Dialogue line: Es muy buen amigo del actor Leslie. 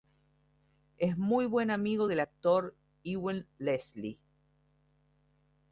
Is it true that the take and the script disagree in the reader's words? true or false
true